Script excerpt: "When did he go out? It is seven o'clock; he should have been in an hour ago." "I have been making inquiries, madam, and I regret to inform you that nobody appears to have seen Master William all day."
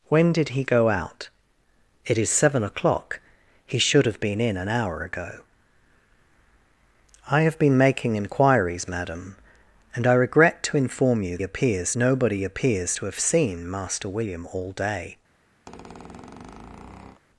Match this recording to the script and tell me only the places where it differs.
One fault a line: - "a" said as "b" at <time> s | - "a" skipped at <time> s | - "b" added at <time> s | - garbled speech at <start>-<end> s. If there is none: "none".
- "that" said as "appears" at 11.4 s